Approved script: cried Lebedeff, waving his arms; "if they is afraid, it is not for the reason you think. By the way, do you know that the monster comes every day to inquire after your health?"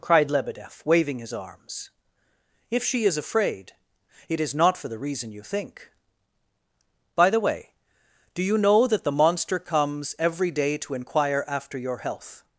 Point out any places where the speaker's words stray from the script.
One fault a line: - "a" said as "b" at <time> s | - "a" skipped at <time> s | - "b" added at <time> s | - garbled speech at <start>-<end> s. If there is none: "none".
- "they" said as "she" at 2.8 s